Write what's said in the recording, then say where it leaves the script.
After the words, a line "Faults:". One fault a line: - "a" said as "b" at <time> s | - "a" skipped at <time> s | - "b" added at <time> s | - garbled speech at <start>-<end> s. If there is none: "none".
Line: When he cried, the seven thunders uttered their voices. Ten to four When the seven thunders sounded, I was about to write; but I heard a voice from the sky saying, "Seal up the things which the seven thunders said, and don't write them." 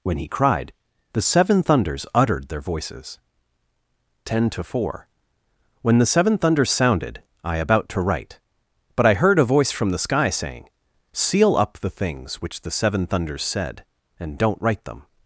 When he cried, the seven thunders uttered their voices. Ten to four When the seven thunders sounded, I about to write; but I heard a voice from the sky saying, "Seal up the things which the seven thunders said, and don't write them."
Faults:
- "was" skipped at 7.6 s